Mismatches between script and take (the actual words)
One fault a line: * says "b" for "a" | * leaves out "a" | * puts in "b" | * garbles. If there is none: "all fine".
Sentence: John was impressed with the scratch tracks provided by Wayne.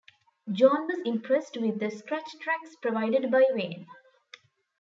all fine